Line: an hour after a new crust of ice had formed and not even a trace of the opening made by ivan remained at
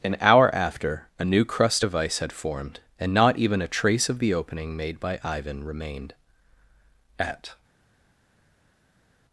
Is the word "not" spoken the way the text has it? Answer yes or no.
yes